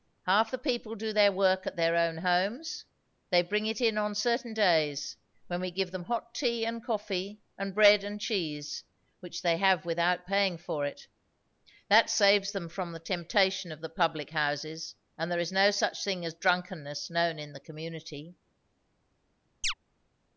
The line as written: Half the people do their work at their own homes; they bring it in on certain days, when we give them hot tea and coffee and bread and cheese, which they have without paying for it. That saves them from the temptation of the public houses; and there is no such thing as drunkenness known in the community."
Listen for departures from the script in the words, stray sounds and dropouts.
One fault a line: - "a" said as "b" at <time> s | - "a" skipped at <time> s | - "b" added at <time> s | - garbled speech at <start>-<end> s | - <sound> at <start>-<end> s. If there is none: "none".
- chirp at 19.6-19.7 s